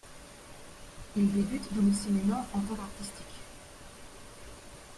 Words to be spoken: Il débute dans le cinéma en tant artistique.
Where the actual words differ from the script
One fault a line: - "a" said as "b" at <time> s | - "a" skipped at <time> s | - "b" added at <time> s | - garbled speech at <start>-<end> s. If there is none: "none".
none